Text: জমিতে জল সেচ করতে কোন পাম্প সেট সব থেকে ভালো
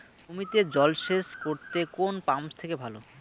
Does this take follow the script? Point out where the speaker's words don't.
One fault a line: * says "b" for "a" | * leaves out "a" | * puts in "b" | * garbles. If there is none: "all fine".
* leaves out "সেট সব"